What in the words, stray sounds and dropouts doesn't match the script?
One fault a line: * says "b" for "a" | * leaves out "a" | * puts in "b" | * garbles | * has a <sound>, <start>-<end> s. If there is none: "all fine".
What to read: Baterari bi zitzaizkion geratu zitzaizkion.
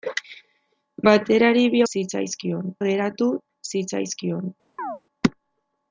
* has a chirp, 4.8-5.0 s